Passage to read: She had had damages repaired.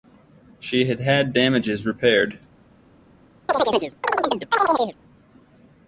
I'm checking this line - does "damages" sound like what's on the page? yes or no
yes